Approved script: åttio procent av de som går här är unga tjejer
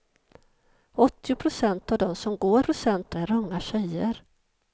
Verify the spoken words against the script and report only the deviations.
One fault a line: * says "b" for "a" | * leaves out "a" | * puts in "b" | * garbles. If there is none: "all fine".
* says "procent" for "här"